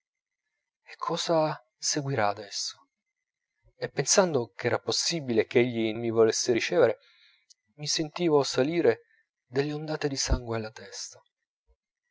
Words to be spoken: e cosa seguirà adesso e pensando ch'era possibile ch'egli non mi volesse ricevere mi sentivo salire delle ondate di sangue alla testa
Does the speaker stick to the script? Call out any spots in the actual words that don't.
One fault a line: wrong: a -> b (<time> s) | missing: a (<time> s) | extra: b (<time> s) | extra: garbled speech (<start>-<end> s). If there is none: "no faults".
missing: non (5.9 s)